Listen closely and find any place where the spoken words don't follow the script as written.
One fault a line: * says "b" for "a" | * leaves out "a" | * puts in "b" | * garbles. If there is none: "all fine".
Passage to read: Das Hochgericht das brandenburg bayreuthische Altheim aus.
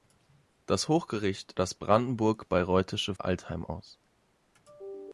all fine